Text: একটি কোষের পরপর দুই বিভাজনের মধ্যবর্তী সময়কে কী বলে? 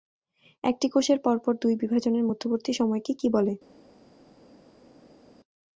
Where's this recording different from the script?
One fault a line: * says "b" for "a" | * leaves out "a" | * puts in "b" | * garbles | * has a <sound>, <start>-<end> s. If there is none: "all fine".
all fine